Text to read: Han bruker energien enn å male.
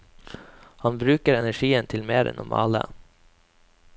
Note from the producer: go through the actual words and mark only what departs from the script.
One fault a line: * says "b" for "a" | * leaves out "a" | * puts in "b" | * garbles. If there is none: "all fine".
* puts in "til mer"